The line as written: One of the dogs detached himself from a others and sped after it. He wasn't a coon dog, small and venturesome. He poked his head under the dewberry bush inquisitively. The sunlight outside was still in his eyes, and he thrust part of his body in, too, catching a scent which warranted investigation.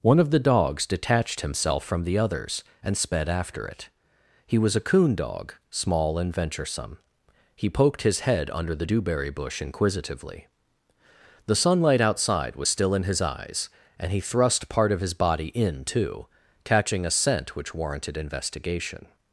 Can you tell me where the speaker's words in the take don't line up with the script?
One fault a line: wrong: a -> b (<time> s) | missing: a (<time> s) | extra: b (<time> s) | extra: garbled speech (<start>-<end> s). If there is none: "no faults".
wrong: a -> the (2.0 s)
wrong: wasn't -> was (4.6 s)